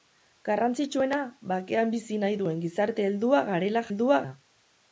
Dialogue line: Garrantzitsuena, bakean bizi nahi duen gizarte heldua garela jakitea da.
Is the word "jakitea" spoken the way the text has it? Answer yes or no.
no